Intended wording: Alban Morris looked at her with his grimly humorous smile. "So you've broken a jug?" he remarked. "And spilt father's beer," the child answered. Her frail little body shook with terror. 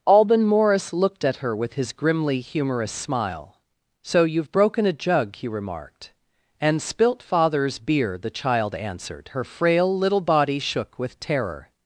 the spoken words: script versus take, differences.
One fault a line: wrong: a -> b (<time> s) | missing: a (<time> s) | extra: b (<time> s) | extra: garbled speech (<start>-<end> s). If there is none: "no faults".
no faults